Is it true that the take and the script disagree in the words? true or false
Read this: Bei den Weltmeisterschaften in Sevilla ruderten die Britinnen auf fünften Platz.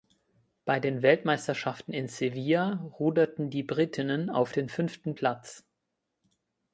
true